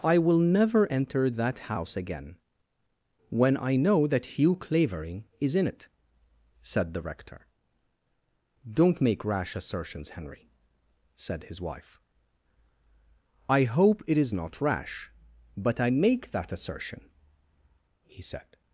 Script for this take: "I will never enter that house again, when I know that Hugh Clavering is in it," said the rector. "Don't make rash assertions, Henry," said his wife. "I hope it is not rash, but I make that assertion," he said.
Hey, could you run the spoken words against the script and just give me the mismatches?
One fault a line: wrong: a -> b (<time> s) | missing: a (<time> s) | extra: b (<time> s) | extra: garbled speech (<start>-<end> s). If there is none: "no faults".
no faults